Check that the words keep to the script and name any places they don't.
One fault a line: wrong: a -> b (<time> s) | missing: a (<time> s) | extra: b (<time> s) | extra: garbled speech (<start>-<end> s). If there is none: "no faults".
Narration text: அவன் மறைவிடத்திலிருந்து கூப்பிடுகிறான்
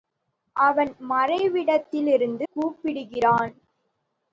no faults